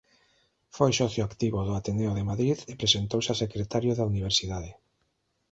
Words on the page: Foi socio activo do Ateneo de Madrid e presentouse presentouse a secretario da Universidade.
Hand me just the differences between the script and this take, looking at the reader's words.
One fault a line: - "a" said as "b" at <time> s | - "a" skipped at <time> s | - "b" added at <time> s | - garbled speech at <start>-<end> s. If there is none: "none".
- "presentouse" skipped at 3.3 s